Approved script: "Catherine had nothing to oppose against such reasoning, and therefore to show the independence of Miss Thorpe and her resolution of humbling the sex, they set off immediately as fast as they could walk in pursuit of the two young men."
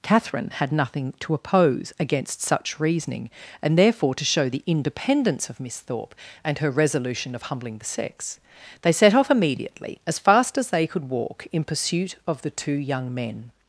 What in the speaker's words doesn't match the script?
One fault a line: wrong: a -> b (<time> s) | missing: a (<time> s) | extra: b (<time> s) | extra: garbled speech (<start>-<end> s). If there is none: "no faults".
no faults